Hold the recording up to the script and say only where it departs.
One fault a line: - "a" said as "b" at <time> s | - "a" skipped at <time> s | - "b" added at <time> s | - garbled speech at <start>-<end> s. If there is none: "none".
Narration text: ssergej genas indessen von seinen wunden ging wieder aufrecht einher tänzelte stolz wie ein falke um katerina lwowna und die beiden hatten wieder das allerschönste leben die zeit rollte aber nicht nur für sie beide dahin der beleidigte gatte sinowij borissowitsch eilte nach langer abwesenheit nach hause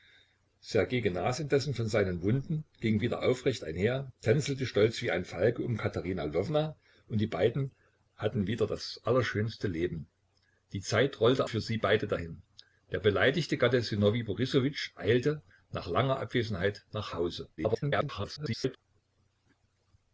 - "aber nicht nur" skipped at 11.4 s
- garbled speech at 17.6-18.8 s